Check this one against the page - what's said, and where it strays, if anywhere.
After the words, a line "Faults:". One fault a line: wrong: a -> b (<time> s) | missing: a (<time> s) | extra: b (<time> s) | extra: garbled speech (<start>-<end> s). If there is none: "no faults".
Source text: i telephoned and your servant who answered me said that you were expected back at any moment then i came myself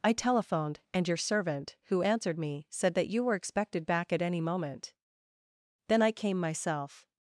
i telephoned and your servant who answered me said that you were expected back at any moment then i came myself
Faults:
no faults